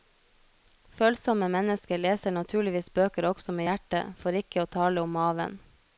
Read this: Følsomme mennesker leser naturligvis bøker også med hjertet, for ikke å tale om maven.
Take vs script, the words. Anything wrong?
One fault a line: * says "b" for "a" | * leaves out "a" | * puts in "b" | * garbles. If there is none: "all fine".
all fine